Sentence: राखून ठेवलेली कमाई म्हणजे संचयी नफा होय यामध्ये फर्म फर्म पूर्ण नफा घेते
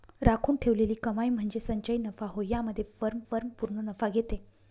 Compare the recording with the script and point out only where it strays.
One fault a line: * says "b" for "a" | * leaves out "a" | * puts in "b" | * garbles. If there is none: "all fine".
all fine